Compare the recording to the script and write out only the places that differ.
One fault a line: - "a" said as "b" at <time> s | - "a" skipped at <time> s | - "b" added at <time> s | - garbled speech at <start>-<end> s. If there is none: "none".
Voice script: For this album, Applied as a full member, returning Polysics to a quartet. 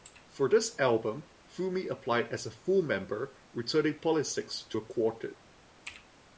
- "Fumi" added at 1.5 s